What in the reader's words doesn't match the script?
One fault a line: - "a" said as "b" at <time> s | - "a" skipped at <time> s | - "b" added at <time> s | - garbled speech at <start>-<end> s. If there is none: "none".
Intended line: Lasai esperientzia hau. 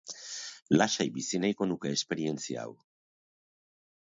- "bizi nahiko nuke" added at 1.2 s